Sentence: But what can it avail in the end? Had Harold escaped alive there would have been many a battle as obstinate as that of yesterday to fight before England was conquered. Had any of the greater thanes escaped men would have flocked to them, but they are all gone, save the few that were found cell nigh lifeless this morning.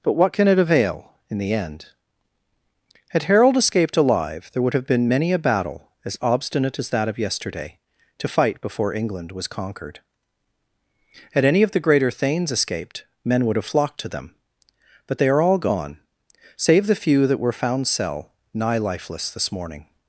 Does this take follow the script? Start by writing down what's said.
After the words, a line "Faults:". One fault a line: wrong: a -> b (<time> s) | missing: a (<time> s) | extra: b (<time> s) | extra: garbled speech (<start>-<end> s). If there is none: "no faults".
But what can it avail in the end? Had Harold escaped alive there would have been many a battle as obstinate as that of yesterday to fight before England was conquered. Had any of the greater thanes escaped men would have flocked to them, but they are all gone, save the few that were found cell nigh lifeless this morning.
Faults:
no faults